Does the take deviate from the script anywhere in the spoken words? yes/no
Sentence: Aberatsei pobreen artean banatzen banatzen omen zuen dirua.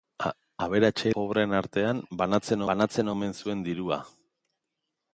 no